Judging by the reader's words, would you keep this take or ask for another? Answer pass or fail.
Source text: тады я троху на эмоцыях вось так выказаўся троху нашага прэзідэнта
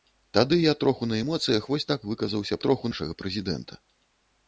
pass